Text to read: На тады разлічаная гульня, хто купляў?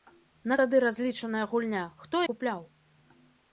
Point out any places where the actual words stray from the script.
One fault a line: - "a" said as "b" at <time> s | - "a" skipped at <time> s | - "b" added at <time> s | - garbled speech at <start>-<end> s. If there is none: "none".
none